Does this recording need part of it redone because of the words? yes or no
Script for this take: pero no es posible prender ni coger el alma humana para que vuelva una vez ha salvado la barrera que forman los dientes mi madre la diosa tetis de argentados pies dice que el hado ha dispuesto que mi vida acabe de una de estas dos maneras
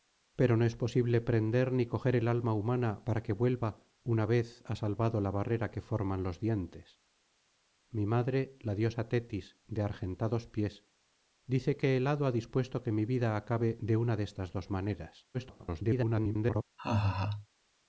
yes